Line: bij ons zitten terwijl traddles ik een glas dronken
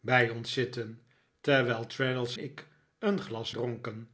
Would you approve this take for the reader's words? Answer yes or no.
yes